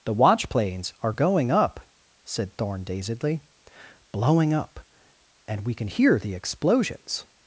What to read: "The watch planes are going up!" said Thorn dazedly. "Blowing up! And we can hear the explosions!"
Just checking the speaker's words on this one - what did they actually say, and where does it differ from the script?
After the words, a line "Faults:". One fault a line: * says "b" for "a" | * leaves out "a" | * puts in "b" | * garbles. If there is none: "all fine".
"The watch planes are going up!" said Thorn dazedly. "Blowing up! And we can hear the explosions!"
Faults:
all fine